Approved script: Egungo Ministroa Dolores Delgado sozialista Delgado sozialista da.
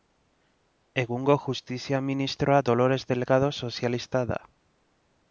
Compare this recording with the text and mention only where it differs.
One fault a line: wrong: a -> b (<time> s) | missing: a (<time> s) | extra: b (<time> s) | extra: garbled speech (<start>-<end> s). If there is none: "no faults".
extra: Justizia (1.4 s)
missing: Delgado sozialista (4.2 s)